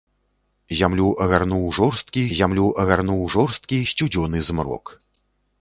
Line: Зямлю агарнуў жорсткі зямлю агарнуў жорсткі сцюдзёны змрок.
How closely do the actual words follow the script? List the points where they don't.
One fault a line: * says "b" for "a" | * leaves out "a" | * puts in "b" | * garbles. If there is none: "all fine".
all fine